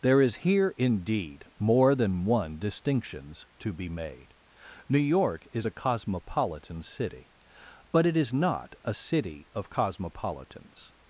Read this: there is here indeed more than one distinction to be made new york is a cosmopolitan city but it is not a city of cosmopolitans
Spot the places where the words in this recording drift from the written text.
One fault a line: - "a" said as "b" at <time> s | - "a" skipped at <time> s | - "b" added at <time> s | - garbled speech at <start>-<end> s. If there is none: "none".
- "distinction" said as "distinctions" at 2.6 s